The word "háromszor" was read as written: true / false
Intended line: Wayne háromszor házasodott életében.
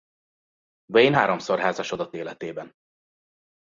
true